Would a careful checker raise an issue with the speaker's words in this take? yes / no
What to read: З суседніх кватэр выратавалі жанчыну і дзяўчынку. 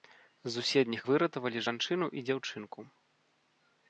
yes